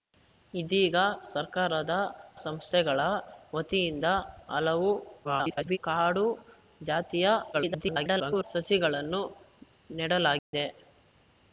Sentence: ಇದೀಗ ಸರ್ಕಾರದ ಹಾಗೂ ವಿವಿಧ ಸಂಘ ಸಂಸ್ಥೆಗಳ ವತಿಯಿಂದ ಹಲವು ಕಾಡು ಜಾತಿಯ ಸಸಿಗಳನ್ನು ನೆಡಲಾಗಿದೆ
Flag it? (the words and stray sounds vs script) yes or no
yes